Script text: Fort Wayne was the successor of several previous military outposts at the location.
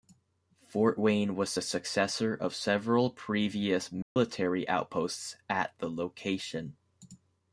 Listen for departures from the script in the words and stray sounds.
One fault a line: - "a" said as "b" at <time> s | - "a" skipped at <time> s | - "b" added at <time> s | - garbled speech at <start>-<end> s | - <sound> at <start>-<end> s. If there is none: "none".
- dropout at 4.0-4.2 s